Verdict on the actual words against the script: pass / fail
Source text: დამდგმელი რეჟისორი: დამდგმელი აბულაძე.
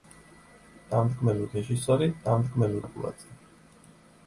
pass